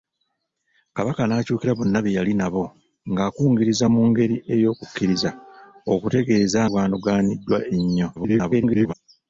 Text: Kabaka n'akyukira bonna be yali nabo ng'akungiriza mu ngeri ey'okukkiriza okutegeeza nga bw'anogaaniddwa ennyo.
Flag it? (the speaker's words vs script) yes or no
yes